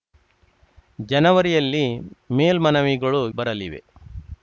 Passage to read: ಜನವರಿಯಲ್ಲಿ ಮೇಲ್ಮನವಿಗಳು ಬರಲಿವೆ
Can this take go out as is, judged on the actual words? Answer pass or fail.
pass